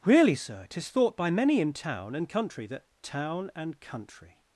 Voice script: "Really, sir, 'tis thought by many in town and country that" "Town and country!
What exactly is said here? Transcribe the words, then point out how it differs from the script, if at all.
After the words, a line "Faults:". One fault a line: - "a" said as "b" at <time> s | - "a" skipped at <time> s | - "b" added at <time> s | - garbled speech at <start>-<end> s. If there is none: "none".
"Really, sir, 'tis thought by many in town and country that" "Town and country!
Faults:
none